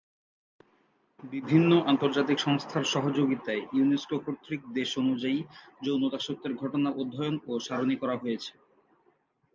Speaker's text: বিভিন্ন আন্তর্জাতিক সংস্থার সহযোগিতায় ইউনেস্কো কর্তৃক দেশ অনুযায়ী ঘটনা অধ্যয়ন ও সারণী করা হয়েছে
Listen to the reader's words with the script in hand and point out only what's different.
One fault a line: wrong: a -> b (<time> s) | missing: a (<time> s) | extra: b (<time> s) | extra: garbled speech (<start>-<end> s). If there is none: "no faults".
extra: যৌন দাসত্বের (5.9 s)